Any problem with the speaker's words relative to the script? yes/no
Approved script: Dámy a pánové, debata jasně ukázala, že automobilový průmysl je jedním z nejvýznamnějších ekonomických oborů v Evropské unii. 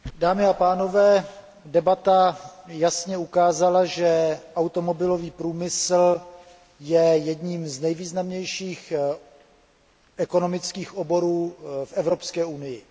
no